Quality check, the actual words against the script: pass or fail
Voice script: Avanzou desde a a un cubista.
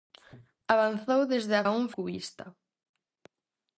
pass